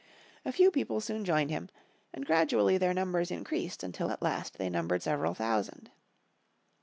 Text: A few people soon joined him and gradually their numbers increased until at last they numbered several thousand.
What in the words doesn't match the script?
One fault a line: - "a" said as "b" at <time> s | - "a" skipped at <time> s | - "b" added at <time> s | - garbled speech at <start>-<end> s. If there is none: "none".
none